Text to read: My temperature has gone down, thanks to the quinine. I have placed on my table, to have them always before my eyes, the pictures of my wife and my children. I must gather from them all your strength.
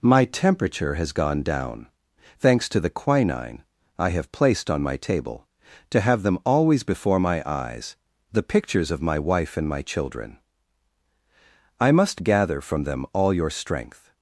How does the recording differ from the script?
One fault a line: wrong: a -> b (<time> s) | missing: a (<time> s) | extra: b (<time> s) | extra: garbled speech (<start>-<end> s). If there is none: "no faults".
no faults